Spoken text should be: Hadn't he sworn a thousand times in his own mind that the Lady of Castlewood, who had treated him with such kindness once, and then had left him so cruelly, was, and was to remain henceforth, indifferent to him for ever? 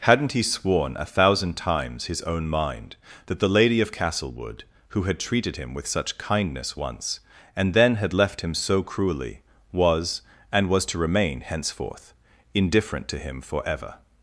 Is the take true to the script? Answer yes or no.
no